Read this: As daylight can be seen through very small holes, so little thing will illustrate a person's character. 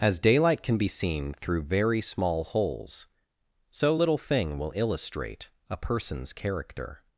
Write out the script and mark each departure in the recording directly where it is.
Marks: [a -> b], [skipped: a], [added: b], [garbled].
As daylight can be seen through very small holes, so little thing will illustrate a person's character.